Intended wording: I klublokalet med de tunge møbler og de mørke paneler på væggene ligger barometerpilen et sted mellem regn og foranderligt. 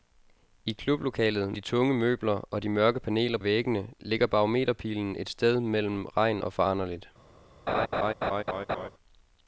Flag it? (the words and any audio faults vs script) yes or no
yes